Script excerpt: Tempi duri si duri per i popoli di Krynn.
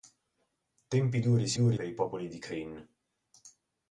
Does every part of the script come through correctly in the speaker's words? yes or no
yes